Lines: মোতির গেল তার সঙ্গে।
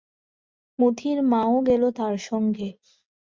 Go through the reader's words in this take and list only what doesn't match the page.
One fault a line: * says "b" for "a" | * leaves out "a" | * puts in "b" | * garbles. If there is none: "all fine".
* puts in "মাও"